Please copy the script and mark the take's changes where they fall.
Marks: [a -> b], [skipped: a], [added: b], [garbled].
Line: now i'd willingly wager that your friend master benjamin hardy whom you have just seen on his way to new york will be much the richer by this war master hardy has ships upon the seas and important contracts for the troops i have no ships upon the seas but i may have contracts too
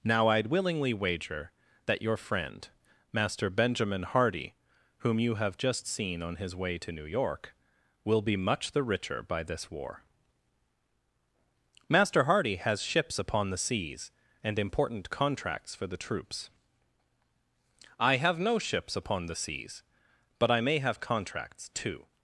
now i'd willingly wager that your friend master benjamin hardy whom you have just seen on his way to new york will be much the richer by this war master hardy has ships upon the seas and important contracts for the troops i have no ships upon the seas but i may have contracts too